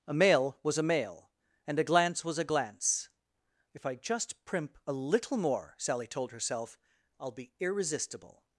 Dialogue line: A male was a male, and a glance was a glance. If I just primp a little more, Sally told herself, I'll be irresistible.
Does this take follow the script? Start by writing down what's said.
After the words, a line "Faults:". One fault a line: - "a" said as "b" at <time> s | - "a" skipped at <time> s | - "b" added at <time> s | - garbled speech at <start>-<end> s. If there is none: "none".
A male was a male, and a glance was a glance. If I just primp a little more, Sally told herself, I'll be irresistible.
Faults:
none